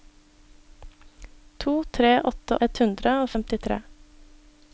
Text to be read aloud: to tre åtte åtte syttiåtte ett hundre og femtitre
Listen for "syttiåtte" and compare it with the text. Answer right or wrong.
wrong